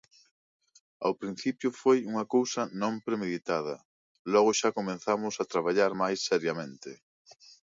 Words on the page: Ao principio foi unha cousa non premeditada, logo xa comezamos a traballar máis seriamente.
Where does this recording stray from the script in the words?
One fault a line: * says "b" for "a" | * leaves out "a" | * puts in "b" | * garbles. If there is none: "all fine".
all fine